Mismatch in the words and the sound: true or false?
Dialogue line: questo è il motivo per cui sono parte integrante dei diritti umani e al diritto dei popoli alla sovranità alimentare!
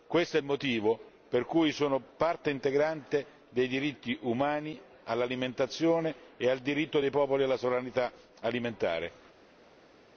true